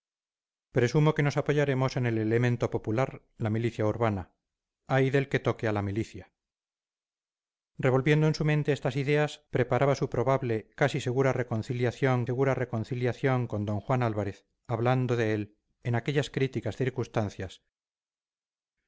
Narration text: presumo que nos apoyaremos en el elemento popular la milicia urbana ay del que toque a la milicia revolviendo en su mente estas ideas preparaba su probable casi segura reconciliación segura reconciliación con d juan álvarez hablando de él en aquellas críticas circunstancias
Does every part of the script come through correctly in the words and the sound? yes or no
yes